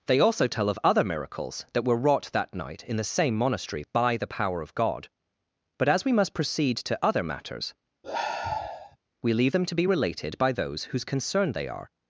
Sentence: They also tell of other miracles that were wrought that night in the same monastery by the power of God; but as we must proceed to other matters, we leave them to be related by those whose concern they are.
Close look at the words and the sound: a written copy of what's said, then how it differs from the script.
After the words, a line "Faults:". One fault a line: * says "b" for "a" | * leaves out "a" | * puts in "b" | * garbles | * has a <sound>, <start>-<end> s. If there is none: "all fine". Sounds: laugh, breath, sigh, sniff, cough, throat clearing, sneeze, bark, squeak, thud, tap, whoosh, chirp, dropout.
They also tell of other miracles that were wrought that night in the same monastery by the power of God; but as we must proceed to other matters, we leave them to be related by those whose concern they are.
Faults:
* has a sigh, 8.0-9.0 s